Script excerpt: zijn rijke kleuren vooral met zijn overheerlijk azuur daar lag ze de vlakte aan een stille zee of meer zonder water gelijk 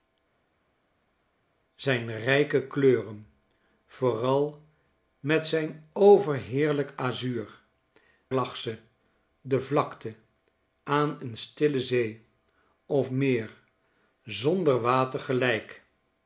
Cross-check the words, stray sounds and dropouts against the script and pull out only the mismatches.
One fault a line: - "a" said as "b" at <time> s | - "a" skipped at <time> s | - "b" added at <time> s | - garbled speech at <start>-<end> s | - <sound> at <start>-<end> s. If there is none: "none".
- "daar" skipped at 7.6 s